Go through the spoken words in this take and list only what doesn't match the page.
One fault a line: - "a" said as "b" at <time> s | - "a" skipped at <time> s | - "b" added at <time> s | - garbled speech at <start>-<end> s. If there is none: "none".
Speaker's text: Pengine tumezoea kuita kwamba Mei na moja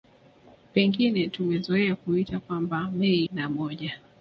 none